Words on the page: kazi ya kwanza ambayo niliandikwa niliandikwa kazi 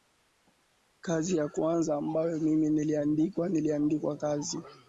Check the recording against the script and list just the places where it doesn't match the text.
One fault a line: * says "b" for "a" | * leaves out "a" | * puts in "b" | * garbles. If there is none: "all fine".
* puts in "mimi"